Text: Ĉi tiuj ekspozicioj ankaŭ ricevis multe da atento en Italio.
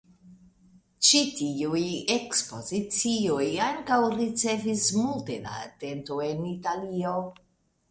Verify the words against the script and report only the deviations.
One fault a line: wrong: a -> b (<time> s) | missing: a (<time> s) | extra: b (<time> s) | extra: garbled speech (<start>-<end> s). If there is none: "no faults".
no faults